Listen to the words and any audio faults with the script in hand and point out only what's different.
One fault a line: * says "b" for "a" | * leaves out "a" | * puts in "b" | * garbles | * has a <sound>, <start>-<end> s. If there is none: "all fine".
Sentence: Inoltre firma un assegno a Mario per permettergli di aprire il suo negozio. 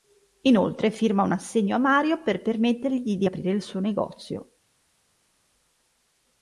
all fine